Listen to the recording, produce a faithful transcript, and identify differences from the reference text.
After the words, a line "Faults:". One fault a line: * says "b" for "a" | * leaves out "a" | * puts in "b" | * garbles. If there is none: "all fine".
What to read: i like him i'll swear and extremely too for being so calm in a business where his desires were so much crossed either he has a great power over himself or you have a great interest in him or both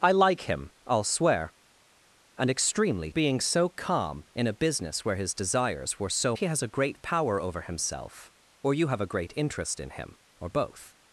i like him i'll swear and extremely being so calm in a business where his desires were so he has a great power over himself or you have a great interest in him or both
Faults:
* leaves out "too for"
* leaves out "much crossed either"